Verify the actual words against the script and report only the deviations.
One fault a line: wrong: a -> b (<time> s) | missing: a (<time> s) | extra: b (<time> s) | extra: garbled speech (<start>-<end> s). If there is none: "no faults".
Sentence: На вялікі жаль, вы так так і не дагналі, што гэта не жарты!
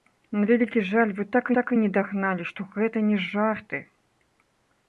no faults